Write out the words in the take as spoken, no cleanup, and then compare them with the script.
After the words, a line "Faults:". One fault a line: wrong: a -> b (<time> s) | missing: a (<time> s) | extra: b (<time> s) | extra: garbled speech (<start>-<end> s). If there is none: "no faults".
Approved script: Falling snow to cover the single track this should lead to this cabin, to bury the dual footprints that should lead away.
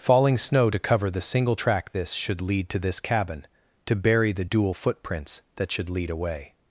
Falling snow to cover the single track this should lead to this cabin, to bury the dual footprints that should lead away.
Faults:
no faults